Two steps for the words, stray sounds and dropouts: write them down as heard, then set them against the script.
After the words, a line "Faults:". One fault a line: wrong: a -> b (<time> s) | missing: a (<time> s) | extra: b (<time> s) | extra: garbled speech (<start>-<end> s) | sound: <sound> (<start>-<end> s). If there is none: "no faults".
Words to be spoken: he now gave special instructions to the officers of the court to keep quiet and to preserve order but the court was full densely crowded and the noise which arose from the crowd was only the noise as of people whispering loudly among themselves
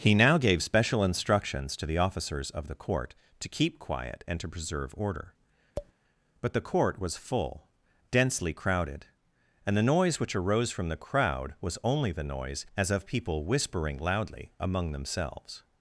he now gave special instructions to the officers of the court to keep quiet and to preserve order but the court was full densely crowded and the noise which arose from the crowd was only the noise as of people whispering loudly among themselves
Faults:
sound: tap (5.8-5.9 s)